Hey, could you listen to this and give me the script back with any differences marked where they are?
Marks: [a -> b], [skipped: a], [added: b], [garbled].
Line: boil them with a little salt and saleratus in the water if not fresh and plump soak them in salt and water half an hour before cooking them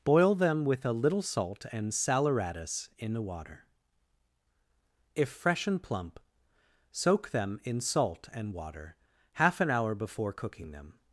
boil them with a little salt and saleratus in the water if [skipped: not] fresh and plump soak them in salt and water half an hour before cooking them